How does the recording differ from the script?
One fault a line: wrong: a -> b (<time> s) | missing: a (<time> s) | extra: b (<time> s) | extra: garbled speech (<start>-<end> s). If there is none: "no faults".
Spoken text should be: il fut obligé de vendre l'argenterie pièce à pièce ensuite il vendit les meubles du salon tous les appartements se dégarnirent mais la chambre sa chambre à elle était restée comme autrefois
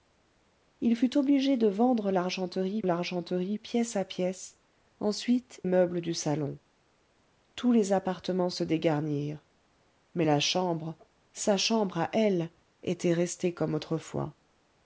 extra: l'argenterie (2.8 s)
missing: il vendit les (5.6 s)